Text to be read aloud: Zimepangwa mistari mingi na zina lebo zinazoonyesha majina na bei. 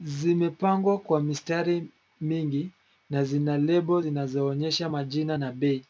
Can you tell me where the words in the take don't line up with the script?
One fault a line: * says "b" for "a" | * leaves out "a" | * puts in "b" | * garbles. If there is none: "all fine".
* puts in "kwa"